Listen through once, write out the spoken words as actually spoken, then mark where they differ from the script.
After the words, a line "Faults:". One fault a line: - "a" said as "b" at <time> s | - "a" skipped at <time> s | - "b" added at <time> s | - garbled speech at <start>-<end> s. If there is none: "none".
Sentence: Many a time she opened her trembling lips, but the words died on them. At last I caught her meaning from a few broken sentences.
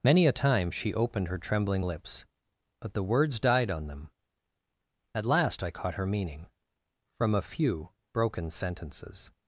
Many a time she opened her trembling lips, but the words died on them. At last I caught her meaning from a few broken sentences.
Faults:
none